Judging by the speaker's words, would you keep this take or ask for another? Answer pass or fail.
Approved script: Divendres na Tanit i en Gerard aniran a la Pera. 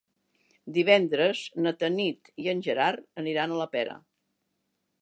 pass